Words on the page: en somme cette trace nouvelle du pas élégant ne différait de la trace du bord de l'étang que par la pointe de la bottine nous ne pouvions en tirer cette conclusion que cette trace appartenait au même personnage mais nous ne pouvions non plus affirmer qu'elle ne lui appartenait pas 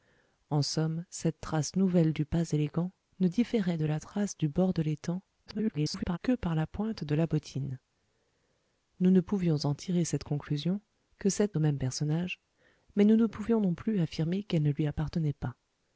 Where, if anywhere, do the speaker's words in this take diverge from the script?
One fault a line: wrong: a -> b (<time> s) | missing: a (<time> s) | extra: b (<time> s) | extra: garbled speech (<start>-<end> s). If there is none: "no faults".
extra: garbled speech (5.5-6.2 s)
missing: trace appartenait (11.6 s)